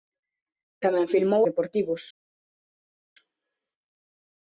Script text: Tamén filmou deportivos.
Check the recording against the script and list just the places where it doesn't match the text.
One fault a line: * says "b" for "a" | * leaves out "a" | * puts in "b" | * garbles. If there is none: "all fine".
all fine